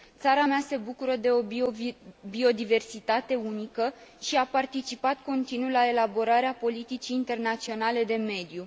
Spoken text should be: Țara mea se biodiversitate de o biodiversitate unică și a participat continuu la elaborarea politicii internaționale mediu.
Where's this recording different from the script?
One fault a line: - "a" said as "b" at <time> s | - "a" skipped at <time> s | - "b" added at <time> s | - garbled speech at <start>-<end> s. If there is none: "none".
- "biodiversitate" said as "bucură" at 0.8 s
- "de" added at 8.0 s